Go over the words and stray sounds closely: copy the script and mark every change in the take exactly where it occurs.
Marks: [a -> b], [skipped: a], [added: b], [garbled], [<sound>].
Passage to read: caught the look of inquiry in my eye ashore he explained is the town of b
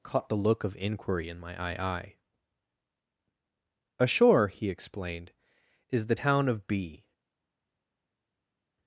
caught the look of inquiry in my eye [added: eye] ashore he explained is the town of b